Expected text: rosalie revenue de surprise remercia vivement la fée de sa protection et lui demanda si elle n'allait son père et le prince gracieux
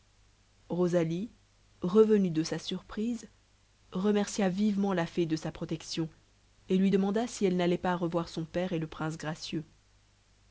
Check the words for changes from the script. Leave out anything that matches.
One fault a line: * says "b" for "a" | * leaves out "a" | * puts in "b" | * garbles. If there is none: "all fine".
* puts in "sa"
* puts in "pas revoir"